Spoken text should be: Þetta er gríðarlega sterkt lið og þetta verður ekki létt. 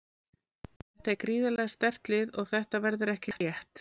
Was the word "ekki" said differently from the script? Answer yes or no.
no